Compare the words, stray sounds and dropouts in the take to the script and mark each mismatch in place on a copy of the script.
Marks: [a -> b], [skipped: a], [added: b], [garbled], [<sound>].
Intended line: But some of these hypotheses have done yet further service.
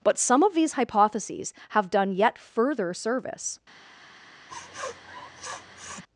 But some of these hypotheses have done yet further service. [sniff]